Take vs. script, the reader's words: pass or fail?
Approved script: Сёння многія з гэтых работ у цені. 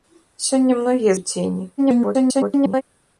fail